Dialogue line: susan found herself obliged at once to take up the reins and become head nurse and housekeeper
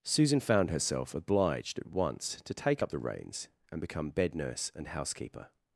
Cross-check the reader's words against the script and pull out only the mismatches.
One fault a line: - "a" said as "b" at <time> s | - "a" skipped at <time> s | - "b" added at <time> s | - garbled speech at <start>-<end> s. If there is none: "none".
- "head" said as "bed" at 4.1 s